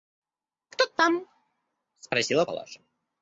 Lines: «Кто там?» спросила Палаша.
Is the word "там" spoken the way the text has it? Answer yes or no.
yes